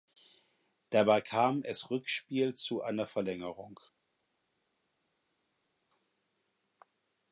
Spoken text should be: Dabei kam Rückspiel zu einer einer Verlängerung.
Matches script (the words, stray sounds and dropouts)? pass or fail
fail